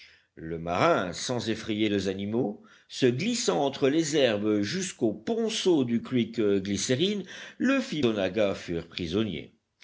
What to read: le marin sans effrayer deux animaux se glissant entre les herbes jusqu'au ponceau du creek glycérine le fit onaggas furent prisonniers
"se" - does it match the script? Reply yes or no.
yes